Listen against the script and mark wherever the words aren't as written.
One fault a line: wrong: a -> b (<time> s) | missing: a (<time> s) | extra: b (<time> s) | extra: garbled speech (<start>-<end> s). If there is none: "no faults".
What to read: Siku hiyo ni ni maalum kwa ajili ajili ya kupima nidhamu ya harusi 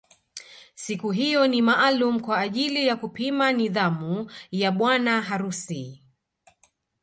missing: ni (1.6 s)
missing: ajili (2.9 s)
extra: bwana (4.7 s)